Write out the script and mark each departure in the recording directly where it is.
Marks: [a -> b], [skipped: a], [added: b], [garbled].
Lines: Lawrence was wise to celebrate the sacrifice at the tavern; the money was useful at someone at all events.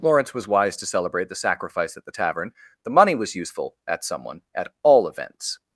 Lawrence was wise to celebrate the sacrifice at the tavern; the money was useful at someone at all events.